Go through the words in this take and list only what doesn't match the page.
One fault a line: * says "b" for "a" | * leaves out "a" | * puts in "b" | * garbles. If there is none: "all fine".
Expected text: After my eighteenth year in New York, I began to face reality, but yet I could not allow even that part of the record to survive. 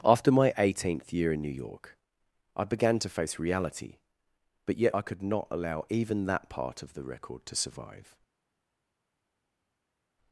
all fine